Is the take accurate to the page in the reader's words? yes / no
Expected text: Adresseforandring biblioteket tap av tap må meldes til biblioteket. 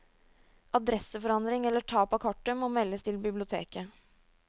no